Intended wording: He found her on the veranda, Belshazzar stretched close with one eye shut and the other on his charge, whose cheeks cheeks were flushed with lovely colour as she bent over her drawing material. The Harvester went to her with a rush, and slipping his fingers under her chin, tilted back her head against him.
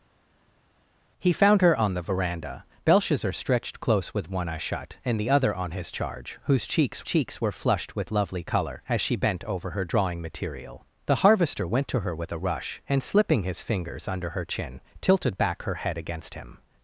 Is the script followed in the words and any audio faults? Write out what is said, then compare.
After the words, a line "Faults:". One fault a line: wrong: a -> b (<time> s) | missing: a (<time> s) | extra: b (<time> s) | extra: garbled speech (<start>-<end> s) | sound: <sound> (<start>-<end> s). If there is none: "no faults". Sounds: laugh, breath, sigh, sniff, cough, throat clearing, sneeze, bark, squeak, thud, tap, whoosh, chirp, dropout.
He found her on the veranda, Belshazzar stretched close with one eye shut and the other on his charge, whose cheeks cheeks were flushed with lovely colour as she bent over her drawing material. The Harvester went to her with a rush, and slipping his fingers under her chin, tilted back her head against him.
Faults:
no faults